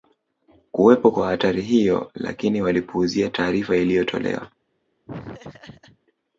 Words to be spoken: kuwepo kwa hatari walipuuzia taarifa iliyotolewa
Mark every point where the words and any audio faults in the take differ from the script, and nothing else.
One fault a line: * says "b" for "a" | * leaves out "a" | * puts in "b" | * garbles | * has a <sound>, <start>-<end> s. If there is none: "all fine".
* puts in "hiyo lakini"
* has a laugh, 5.1-6.0 s